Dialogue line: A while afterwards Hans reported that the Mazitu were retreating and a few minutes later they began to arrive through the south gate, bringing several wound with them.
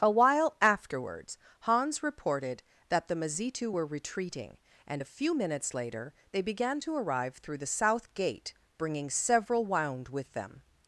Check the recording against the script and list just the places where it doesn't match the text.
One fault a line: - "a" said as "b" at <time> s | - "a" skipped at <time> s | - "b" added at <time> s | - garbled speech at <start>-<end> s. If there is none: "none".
none